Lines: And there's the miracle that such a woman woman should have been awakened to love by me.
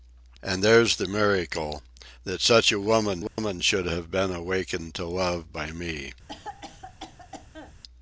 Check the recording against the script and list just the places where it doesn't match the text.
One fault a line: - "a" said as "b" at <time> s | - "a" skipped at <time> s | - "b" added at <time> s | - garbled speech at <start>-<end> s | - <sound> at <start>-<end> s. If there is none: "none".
- dropout at 3.3-3.4 s
- cough at 6.3-7.7 s